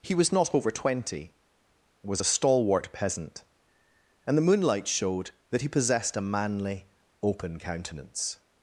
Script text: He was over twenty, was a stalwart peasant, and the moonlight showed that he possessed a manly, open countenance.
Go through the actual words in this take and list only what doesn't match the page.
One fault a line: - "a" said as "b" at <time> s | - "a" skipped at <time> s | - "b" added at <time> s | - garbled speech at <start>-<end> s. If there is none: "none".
- "not" added at 0.3 s